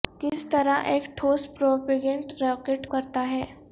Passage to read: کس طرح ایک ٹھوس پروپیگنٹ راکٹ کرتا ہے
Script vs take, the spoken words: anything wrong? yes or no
no